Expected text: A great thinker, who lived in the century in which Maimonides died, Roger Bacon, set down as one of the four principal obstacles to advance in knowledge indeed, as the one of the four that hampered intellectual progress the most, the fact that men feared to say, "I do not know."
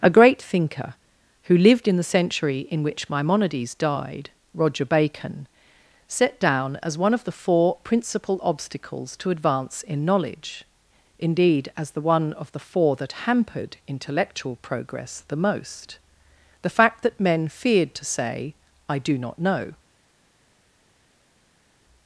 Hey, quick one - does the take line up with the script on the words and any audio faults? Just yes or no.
yes